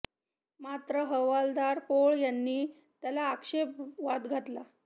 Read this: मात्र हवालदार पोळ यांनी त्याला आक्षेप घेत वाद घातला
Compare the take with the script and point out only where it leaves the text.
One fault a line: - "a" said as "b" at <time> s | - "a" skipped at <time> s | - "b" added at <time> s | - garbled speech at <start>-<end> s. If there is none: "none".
- "घेत" skipped at 3.8 s